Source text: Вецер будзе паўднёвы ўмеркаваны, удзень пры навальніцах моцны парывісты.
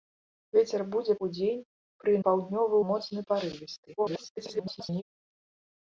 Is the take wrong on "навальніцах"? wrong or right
wrong